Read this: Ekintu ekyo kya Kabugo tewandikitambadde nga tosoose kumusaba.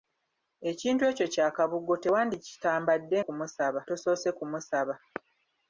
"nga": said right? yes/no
no